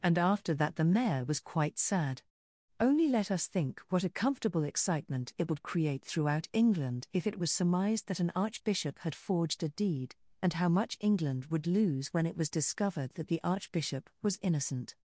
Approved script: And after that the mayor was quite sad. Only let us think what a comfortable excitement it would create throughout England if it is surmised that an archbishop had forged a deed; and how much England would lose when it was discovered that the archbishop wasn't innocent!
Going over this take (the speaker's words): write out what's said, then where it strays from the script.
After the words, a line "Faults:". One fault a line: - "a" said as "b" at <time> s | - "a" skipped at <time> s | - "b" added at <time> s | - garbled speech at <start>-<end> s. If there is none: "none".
And after that the mayor was quite sad. Only let us think what a comfortable excitement it would create throughout England if it was surmised that an archbishop had forged a deed; and how much England would lose when it was discovered that the archbishop was innocent!
Faults:
- "is" said as "was" at 7.4 s
- "wasn't" said as "was" at 14.2 s